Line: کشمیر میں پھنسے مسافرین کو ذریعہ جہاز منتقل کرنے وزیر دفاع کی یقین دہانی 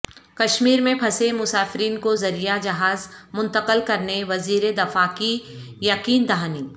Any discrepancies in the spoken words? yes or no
no